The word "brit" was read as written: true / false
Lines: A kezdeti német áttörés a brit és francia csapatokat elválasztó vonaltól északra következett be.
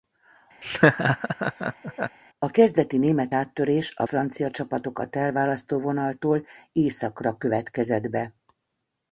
false